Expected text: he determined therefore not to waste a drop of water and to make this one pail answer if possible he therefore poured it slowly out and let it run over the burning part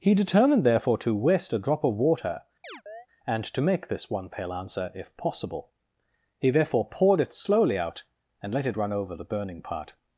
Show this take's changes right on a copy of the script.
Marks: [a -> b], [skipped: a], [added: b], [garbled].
he determined therefore [skipped: not] to waste a drop of water and to make this one pail answer if possible he therefore poured it slowly out and let it run over the burning part